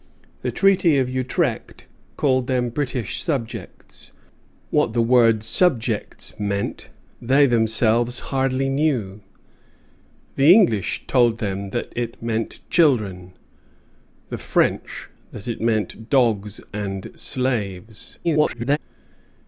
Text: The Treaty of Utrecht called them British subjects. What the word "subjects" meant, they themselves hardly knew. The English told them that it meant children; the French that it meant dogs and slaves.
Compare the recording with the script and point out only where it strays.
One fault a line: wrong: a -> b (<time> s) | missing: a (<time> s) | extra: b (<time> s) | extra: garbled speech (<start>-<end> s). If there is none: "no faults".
extra: garbled speech (18.2-18.8 s)